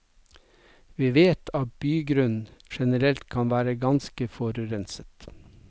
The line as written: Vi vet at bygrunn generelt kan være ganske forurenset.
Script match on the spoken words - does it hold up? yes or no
yes